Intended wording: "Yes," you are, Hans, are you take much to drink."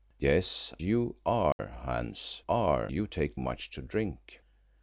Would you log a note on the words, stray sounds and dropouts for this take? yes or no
yes